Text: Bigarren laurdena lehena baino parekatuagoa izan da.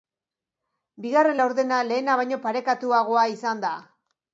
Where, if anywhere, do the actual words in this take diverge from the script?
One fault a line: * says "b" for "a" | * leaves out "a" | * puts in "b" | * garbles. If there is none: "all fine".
all fine